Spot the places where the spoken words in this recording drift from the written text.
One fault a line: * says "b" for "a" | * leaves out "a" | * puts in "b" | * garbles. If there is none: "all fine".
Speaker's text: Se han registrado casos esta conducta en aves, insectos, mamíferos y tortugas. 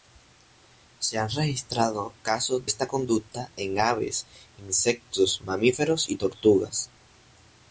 all fine